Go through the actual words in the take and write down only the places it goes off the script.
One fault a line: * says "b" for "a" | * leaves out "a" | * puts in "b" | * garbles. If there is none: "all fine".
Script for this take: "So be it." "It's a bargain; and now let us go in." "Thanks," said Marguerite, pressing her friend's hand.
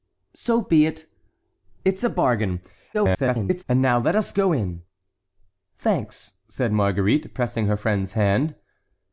* garbles